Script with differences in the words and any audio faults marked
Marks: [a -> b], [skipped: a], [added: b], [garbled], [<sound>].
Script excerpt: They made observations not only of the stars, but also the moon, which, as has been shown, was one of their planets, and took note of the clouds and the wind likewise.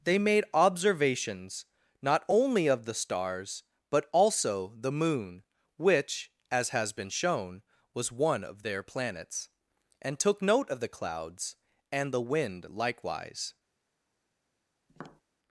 They made observations not only of the stars, but also the moon, which, as has been shown, was one of their planets, and took note of the clouds and the wind likewise. [tap]